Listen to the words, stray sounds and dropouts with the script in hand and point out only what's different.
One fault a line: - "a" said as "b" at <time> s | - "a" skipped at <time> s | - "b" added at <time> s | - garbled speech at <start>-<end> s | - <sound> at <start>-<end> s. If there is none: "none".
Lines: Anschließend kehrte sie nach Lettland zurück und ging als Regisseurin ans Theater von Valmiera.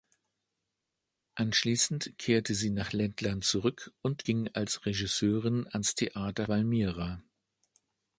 - "von" skipped at 6.5 s